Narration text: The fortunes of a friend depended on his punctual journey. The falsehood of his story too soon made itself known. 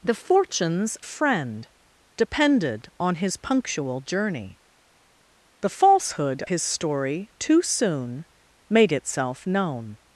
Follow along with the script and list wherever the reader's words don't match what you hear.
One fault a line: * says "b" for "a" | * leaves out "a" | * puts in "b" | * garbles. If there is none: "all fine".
* leaves out "of"
* leaves out "of"